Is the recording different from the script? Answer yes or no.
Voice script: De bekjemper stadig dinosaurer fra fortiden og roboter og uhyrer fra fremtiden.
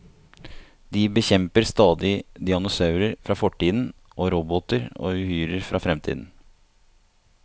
no